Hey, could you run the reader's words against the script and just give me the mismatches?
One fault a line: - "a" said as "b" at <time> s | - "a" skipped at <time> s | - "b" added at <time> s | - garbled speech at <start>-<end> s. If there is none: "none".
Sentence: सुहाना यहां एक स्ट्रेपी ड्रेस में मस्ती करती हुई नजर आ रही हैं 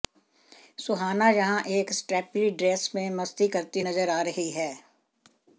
- "हुई" skipped at 3.8 s